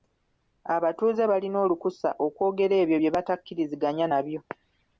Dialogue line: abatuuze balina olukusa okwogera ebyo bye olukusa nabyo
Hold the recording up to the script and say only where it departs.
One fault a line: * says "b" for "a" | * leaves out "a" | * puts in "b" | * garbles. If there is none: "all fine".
* says "batakkiriziganya" for "olukusa"